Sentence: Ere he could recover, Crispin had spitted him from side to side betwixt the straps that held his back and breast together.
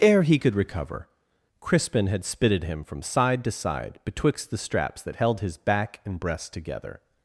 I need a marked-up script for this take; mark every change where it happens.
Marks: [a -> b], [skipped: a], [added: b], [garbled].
Ere he could recover, Crispin had spitted him from side to side betwixt the straps that held his back and breast together.